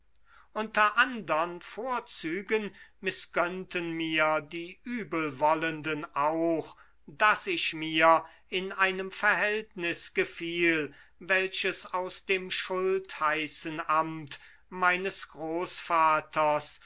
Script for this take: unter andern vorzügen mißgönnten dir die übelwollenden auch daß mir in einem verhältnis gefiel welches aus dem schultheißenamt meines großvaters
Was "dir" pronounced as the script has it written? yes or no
no